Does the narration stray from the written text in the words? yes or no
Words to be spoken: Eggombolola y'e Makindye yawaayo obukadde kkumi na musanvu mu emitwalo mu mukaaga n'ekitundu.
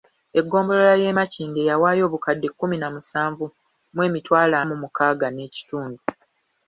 no